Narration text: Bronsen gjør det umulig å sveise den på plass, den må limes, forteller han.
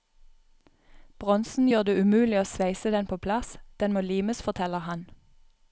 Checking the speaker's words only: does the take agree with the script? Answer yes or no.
yes